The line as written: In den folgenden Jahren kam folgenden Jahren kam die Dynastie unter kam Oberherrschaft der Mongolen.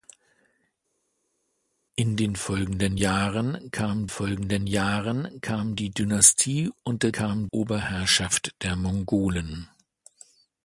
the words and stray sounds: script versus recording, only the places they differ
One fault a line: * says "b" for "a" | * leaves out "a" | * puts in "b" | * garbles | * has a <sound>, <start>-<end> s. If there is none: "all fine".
all fine